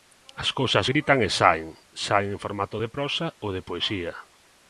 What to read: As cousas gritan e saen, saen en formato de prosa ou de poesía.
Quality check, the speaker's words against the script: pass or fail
pass